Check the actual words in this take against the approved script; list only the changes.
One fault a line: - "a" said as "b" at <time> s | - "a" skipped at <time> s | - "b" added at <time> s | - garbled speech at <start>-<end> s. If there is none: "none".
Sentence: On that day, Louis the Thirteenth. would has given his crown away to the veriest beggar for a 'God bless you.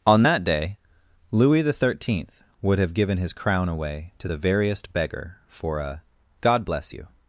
- "has" said as "have" at 2.8 s